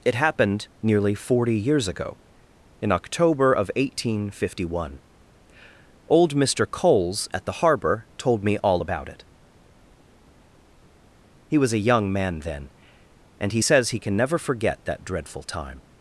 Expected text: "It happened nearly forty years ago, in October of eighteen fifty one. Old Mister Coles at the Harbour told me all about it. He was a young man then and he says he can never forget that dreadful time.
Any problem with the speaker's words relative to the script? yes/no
no